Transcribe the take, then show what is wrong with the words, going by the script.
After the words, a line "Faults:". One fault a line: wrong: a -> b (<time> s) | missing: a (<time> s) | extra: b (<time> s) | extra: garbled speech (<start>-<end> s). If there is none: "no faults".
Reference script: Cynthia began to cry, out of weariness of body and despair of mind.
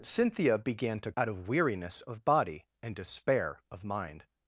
Cynthia began to out of weariness of body and despair of mind.
Faults:
missing: cry (1.1 s)